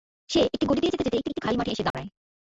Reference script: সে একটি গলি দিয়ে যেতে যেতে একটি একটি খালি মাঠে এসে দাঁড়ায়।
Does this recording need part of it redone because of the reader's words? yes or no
no